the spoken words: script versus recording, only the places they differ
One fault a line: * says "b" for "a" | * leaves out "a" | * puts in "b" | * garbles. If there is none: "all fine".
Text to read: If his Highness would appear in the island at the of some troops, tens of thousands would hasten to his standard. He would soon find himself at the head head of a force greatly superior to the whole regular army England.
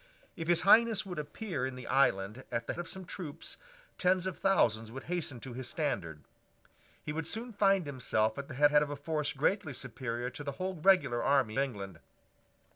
all fine